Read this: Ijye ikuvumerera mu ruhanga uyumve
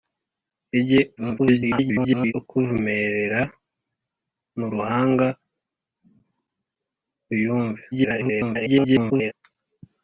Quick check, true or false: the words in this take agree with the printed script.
false